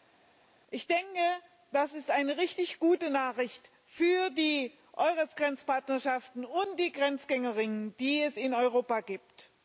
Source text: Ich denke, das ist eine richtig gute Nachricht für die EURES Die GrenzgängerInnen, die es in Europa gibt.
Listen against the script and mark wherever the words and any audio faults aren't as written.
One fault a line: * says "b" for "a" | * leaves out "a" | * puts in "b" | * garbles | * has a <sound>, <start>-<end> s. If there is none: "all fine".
* puts in "Grenzpartnerschaften und"